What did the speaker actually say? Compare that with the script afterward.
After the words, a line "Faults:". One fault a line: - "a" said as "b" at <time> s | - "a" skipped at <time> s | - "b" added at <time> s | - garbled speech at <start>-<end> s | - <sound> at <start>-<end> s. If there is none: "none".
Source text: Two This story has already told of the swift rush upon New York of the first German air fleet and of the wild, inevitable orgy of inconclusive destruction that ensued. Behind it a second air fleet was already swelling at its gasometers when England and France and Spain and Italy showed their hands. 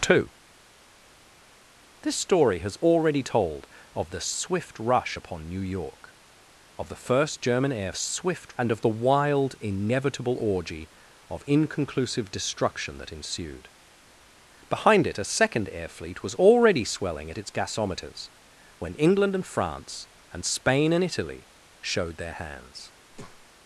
Two This story has already told of the swift rush upon New York of the first German air swift and of the wild, inevitable orgy of inconclusive destruction that ensued. Behind it a second air fleet was already swelling at its gasometers when England and France and Spain and Italy showed their hands.
Faults:
- "fleet" said as "swift" at 8.0 s
- breath at 23.1-23.5 s